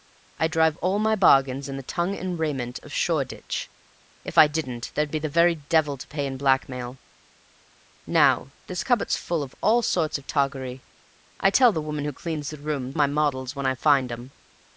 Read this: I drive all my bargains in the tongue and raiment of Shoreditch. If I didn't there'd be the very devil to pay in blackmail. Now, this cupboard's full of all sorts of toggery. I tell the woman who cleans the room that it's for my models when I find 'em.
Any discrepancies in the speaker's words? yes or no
yes